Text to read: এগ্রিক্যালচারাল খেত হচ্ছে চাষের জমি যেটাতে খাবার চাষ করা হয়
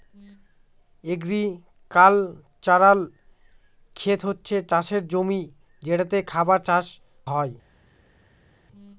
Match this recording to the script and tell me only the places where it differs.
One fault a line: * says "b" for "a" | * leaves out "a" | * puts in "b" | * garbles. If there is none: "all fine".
* leaves out "করা"